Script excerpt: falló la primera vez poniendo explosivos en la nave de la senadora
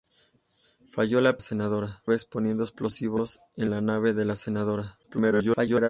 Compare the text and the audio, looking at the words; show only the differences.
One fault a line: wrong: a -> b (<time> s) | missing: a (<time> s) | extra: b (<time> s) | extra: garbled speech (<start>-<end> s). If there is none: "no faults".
wrong: primera -> senadora (1.4 s)
extra: garbled speech (5.0-5.9 s)